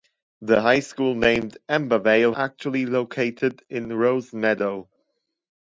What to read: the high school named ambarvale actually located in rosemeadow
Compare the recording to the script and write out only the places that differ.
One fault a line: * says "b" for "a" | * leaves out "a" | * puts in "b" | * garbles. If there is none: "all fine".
all fine